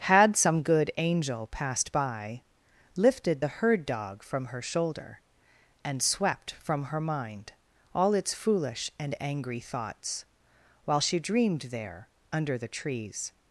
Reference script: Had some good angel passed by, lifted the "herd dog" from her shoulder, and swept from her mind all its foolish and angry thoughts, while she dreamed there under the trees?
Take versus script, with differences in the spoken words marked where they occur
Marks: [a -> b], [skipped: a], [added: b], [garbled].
Had some good angel passed by, lifted the "herd dog" from her shoulder, and swept from her mind all its foolish and angry thoughts, while she dreamed there under the trees?